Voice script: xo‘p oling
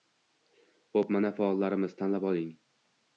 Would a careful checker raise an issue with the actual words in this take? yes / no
yes